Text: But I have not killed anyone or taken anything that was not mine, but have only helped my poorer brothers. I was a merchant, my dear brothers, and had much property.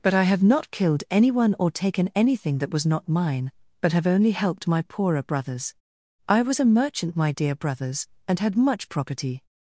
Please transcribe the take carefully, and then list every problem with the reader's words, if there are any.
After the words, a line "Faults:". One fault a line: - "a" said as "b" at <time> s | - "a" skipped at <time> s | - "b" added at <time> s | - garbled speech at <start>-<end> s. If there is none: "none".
But I have not killed anyone or taken anything that was not mine, but have only helped my poorer brothers. I was a merchant, my dear brothers, and had much property.
Faults:
none